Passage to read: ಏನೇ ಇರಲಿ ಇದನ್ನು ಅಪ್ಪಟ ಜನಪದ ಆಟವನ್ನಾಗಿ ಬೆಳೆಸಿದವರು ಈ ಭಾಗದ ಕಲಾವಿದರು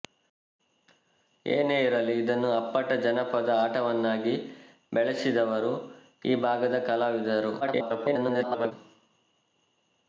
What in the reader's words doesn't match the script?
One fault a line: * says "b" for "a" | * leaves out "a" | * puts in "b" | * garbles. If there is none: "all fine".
* garbles